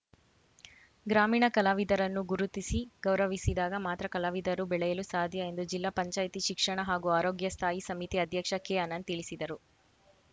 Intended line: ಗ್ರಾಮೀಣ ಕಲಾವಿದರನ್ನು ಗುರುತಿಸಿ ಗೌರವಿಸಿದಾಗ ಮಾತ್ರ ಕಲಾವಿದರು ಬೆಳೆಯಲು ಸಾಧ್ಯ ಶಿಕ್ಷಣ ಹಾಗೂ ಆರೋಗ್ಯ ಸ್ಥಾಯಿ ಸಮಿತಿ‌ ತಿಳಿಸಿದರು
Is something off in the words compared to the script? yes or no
yes